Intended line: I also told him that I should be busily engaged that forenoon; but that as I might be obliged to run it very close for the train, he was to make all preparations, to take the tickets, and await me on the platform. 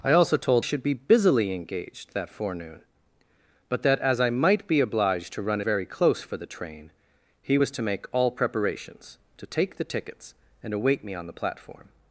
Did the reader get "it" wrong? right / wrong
wrong